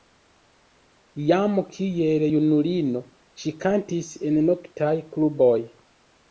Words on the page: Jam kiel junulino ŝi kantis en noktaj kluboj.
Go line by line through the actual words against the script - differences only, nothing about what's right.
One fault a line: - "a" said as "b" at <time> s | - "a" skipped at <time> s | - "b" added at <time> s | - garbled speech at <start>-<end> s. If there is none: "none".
none